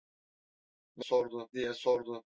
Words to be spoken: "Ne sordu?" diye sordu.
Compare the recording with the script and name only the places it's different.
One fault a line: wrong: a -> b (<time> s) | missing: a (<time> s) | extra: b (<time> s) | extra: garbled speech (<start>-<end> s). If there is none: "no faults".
no faults